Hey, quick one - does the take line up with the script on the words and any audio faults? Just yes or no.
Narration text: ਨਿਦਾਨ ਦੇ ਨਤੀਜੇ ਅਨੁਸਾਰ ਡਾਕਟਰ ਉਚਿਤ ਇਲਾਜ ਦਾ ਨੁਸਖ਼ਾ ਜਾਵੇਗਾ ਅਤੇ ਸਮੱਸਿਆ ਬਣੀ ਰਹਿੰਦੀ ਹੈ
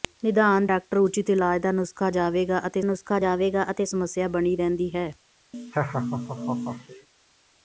no